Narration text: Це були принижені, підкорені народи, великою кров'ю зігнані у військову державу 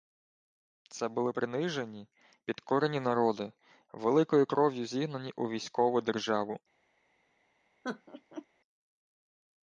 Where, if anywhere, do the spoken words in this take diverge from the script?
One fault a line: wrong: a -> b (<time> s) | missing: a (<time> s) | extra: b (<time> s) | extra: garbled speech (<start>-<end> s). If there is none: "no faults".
no faults